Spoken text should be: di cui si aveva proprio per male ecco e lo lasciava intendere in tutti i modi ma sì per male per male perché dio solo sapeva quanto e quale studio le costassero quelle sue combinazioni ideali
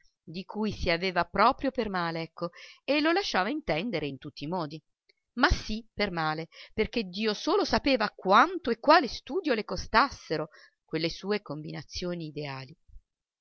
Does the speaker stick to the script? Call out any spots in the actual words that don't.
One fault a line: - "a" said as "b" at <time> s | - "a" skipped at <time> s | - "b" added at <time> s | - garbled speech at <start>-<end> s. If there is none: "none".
- "per male" skipped at 6.5 s